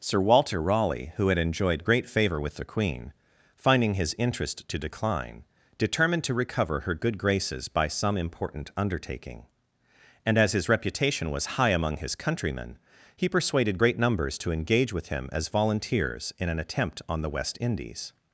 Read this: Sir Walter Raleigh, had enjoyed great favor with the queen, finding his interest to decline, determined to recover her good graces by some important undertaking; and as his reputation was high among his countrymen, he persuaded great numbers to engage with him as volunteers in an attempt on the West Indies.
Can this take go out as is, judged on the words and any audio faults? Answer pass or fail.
fail